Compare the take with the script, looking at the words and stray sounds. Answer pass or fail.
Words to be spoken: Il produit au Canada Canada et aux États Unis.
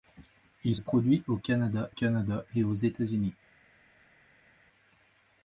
pass